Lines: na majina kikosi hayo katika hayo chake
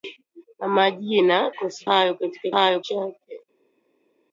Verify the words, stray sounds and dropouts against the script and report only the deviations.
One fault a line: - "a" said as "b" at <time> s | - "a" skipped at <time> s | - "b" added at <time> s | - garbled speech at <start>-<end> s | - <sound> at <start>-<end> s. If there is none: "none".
none